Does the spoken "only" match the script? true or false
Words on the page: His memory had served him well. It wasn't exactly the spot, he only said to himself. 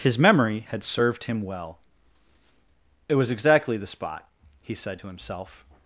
false